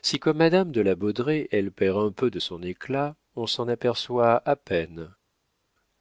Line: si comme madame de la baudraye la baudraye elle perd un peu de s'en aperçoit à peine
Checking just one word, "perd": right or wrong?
right